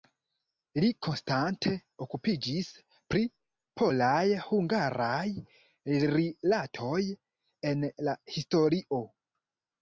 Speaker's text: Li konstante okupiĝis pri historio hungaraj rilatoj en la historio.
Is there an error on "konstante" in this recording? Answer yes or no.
no